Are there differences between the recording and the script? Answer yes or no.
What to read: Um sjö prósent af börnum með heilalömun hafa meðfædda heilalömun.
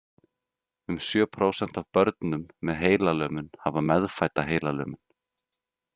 no